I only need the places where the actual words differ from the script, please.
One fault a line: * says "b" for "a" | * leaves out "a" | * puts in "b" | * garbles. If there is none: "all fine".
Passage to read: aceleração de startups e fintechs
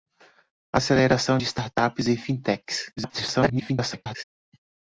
* garbles